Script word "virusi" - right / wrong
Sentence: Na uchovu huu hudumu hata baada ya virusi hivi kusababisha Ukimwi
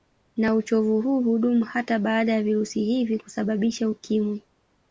right